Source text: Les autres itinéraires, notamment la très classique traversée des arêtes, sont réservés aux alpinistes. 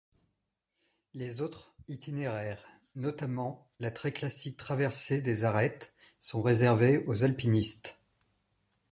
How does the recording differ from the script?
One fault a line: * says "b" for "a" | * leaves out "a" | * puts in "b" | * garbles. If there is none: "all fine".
all fine